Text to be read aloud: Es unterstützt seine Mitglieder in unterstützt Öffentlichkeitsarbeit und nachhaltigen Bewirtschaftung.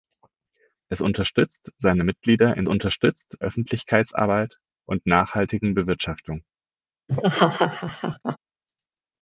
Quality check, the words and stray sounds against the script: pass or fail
fail